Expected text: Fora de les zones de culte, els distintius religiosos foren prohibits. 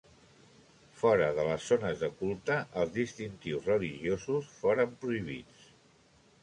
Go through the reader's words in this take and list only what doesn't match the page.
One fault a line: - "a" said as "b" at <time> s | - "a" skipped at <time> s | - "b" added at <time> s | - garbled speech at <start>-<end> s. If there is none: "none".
none